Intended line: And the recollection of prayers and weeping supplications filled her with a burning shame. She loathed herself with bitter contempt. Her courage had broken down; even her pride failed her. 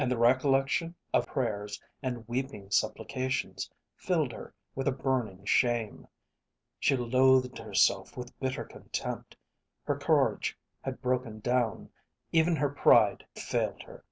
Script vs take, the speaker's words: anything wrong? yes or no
no